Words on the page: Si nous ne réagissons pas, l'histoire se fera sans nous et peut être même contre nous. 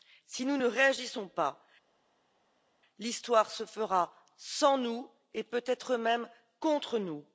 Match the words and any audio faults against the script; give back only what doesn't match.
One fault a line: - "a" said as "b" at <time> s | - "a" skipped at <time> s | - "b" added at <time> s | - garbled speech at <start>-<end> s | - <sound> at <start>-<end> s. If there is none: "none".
none